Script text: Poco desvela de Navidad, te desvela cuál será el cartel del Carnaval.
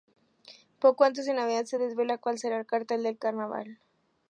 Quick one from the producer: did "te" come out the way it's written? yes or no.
no